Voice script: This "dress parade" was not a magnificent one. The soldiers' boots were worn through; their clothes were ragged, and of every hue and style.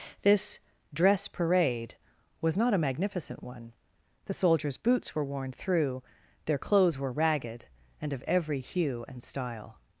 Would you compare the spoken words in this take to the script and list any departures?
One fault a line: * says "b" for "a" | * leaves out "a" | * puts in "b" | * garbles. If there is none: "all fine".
all fine